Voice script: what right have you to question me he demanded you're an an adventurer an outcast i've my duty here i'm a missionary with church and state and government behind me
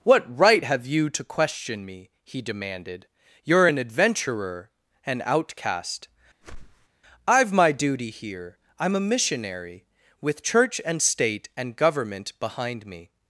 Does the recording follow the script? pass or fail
fail